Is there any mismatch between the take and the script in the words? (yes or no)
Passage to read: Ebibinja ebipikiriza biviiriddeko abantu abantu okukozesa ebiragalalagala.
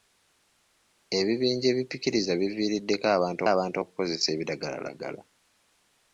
no